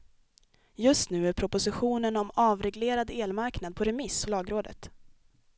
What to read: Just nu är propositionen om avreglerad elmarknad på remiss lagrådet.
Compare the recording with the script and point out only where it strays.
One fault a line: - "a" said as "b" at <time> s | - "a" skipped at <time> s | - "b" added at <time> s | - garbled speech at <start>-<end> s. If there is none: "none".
none